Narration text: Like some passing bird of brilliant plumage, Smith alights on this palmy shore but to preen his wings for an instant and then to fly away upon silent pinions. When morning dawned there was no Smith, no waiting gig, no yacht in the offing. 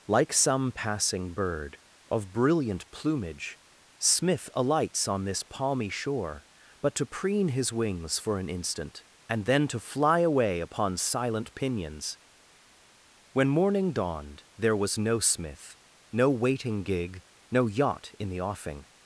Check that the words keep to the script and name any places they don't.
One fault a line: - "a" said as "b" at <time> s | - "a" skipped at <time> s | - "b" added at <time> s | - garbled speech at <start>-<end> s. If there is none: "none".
none